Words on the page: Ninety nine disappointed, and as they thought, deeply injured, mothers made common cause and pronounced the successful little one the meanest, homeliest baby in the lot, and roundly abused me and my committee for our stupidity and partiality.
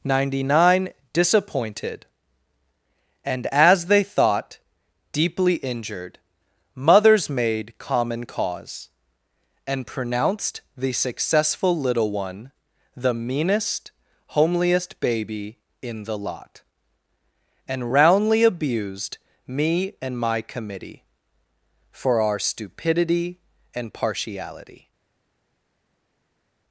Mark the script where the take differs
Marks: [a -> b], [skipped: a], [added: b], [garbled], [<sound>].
Ninety nine disappointed, and as they thought, deeply injured, mothers made common cause and pronounced the successful little one the meanest, homeliest baby in the lot, and roundly abused me and my committee for our stupidity and partiality.